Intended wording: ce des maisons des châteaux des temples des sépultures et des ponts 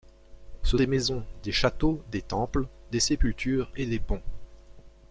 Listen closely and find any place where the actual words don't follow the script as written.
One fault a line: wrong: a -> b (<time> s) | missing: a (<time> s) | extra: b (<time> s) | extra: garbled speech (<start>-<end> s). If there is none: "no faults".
no faults